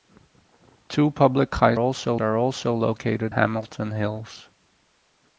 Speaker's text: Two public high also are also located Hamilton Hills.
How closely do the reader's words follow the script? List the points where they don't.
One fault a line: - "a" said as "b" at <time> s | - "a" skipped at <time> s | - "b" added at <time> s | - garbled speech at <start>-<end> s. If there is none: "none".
none